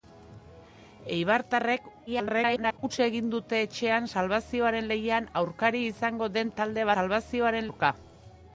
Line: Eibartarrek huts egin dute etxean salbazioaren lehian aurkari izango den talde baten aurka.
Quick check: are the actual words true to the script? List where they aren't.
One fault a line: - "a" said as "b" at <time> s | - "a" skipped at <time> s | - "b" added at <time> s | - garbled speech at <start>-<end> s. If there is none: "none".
- garbled speech at 2.1-2.8 s
- "baten" said as "salbazioaren" at 6.9 s